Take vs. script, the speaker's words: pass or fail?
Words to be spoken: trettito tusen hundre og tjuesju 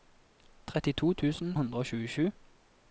pass